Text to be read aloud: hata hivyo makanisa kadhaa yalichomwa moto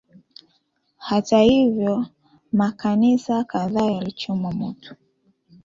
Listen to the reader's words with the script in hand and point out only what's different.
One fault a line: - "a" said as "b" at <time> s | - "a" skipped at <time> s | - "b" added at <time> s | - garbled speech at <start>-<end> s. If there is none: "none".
none